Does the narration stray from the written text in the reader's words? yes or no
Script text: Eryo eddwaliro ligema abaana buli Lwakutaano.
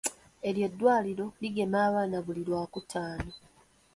no